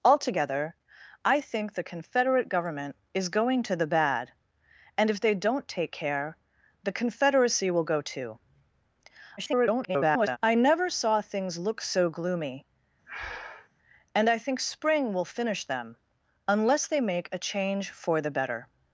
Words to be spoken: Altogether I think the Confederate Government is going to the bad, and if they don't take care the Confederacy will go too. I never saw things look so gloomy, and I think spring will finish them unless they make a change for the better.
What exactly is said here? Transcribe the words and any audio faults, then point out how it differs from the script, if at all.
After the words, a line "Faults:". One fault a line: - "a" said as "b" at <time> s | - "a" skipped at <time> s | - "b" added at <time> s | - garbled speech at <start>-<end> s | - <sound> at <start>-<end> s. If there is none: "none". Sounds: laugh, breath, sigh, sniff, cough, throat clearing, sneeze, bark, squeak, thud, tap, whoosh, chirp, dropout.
Altogether I think the Confederate Government is going to the bad, and if they don't take care the Confederacy will go too. [garbled] I never saw things look so gloomy, and I think spring will finish them unless they make a change for the better.
Faults:
- garbled speech at 9.4-10.4 s
- breath at 13.1-13.7 s